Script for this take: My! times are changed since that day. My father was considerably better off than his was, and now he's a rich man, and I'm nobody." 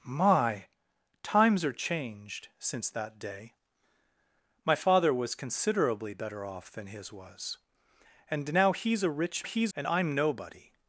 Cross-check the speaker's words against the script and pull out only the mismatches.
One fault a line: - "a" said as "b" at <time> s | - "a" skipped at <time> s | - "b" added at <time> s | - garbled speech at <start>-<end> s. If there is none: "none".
- "man" said as "he's" at 9.4 s